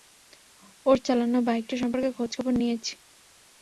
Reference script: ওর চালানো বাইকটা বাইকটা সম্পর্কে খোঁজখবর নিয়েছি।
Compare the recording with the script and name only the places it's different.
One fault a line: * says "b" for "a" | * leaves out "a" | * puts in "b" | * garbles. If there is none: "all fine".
* leaves out "বাইকটা"